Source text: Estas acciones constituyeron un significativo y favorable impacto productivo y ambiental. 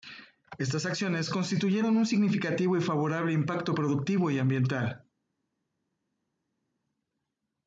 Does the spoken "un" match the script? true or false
true